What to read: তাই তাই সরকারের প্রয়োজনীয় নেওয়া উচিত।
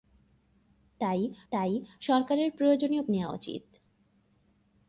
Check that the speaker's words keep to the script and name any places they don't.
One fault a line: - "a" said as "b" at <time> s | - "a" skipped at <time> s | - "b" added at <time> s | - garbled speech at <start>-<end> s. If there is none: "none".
none